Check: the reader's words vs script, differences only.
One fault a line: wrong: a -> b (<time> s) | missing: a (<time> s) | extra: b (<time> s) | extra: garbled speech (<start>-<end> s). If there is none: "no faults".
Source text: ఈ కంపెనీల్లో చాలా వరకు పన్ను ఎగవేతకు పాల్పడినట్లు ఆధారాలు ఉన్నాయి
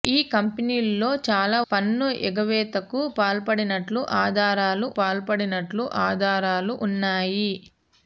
missing: వరకు (1.6 s)
extra: పాల్పడినట్లు ఆధారాలు (5.0 s)